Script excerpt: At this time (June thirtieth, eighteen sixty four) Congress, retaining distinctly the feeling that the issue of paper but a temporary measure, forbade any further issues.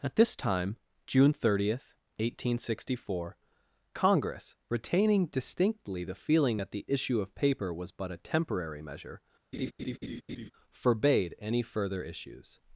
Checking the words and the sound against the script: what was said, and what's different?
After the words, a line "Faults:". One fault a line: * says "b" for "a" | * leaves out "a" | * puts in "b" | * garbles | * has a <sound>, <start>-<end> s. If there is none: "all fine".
At this time (June thirtieth, eighteen sixty four) Congress, retaining distinctly the feeling that the issue of paper was but a temporary measure, forbade any further issues.
Faults:
* puts in "was"
* has a laugh, 9.5-10.5 s